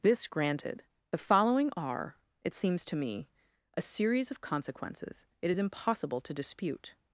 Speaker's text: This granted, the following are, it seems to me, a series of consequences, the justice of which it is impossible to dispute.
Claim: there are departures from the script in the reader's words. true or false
true